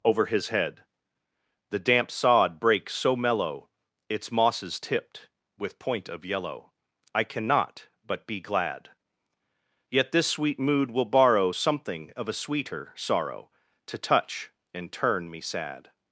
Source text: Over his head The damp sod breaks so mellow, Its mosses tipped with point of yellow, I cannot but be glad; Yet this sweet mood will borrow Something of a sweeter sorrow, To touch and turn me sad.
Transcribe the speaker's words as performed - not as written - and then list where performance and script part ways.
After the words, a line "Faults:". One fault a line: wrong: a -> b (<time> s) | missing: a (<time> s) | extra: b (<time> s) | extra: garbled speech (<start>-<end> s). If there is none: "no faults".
Over his head The damp sod breaks so mellow, Its mosses tipped with point of yellow, I cannot but be glad; Yet this sweet mood will borrow Something of a sweeter sorrow, To touch and turn me sad.
Faults:
no faults